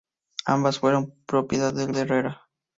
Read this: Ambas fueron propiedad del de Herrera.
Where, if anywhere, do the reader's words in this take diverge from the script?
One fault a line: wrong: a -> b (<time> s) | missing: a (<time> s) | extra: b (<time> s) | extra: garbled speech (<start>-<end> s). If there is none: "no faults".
no faults